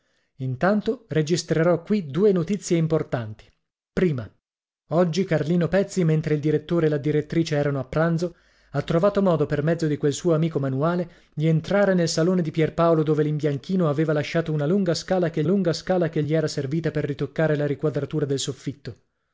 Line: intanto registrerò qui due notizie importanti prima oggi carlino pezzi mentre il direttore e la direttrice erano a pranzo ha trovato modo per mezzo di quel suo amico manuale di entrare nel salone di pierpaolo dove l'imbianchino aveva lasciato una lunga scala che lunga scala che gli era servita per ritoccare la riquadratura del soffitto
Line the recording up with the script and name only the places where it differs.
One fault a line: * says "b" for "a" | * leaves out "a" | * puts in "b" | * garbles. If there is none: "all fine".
all fine